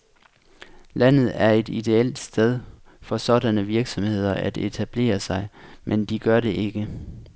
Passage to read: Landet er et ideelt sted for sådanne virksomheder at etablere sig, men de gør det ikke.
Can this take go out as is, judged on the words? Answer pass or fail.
pass